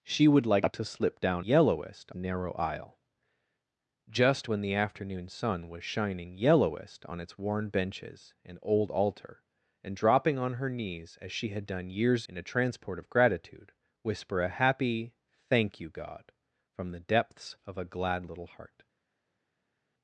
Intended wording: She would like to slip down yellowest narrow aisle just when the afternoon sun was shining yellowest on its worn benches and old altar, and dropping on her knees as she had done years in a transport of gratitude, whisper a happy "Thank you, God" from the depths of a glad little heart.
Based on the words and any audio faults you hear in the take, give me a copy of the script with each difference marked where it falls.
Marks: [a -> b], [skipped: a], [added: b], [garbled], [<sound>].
She would like to slip down yellowest narrow aisle just when the afternoon sun was shining yellowest on its worn benches and old altar, and dropping on her knees as she had done years in a transport of gratitude, whisper a happy "Thank you, God" from the depths of a glad little heart.